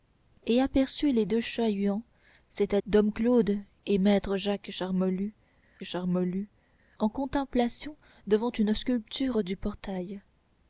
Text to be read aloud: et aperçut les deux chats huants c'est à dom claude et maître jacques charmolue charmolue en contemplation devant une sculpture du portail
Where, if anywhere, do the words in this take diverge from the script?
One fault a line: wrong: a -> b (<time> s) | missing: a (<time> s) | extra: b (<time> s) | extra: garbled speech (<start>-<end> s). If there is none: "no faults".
no faults